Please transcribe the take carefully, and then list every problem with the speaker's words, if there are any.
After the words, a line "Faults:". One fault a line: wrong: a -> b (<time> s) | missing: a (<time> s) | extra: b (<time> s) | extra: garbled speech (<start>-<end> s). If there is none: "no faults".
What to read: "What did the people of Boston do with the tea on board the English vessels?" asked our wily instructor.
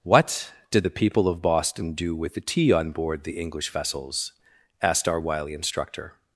"What did the people of Boston do with the tea on board the English vessels?" asked our wily instructor.
Faults:
no faults